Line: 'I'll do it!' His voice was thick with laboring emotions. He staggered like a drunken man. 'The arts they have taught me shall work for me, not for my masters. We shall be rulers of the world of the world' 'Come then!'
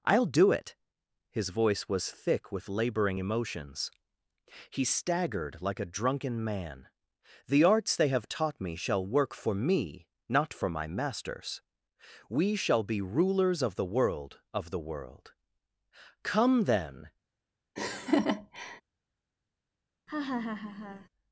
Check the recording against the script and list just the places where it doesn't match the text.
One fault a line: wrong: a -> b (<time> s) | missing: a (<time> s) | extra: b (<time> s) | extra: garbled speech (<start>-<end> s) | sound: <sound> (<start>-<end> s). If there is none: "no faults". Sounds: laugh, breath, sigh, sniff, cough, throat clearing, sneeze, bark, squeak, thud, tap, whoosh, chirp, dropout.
sound: laugh (17.8-18.8 s)
sound: laugh (20.1-21.1 s)